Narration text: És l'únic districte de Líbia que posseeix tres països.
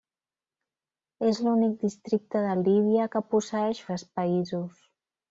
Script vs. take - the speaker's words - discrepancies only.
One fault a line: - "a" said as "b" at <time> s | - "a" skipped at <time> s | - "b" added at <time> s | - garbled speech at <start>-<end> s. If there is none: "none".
none